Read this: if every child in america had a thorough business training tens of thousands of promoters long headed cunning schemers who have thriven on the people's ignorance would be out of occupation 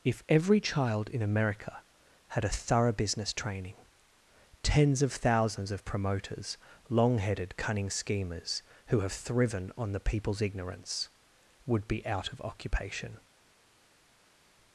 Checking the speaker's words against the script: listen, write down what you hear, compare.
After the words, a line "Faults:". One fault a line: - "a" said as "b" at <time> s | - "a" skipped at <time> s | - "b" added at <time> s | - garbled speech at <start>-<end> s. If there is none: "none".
if every child in america had a thorough business training tens of thousands of promoters long headed cunning schemers who have thriven on the people's ignorance would be out of occupation
Faults:
none